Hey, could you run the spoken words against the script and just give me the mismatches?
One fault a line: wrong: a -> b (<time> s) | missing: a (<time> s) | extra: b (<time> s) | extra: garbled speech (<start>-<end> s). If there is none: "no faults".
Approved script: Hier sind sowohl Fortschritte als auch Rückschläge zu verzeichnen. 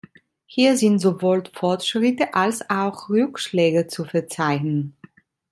no faults